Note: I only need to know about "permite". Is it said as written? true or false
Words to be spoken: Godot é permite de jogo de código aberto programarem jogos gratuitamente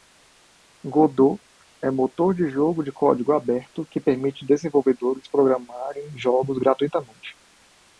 false